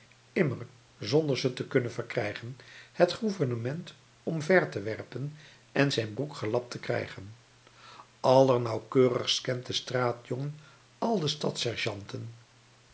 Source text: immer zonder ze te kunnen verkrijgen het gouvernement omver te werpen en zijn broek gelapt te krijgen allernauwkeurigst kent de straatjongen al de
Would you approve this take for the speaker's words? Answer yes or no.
yes